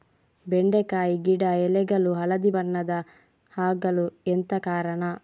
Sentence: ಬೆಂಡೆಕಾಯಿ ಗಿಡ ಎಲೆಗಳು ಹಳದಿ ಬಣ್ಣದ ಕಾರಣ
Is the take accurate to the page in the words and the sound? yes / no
no